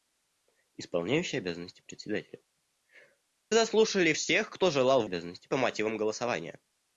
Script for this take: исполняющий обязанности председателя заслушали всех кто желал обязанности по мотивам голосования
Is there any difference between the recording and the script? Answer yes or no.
no